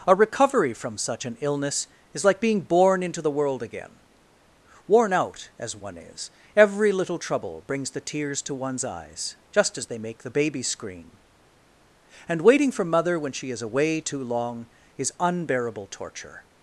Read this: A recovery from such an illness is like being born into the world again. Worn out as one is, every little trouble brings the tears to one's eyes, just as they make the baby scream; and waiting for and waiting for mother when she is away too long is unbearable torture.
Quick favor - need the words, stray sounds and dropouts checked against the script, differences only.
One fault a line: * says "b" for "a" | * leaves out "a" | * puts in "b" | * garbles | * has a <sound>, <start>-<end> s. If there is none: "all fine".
* leaves out "and waiting for"